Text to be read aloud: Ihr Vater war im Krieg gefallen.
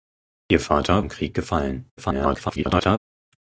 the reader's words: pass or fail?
fail